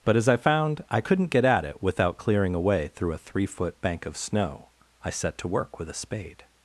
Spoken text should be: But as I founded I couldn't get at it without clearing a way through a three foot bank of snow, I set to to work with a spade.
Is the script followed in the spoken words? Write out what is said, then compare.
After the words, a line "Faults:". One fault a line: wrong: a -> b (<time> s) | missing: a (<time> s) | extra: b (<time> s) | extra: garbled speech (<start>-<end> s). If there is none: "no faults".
But as I found I couldn't get at it without clearing a way through a three foot bank of snow, I set to work with a spade.
Faults:
wrong: founded -> found (0.4 s)
missing: to (5.5 s)